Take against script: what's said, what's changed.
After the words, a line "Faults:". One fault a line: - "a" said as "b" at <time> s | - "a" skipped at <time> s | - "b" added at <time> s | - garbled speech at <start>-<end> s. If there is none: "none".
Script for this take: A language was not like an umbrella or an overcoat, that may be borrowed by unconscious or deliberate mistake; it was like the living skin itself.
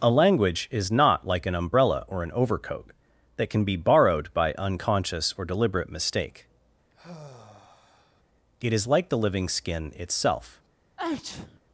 A language is not like an umbrella or an overcoat, that can be borrowed by unconscious or deliberate mistake; it is like the living skin itself.
Faults:
- "was" said as "is" at 0.7 s
- "may" said as "can" at 3.5 s
- "was" said as "is" at 8.7 s